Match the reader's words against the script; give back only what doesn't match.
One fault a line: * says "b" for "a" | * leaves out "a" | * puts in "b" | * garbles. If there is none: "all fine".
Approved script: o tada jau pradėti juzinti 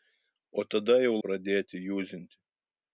all fine